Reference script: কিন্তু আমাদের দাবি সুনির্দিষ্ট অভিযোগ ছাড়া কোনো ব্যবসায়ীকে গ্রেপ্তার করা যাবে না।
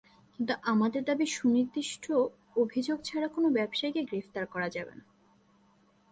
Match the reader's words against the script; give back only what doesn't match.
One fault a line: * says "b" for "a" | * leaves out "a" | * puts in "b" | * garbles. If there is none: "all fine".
all fine